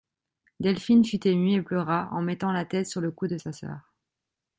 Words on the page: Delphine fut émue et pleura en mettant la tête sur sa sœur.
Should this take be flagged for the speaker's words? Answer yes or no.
yes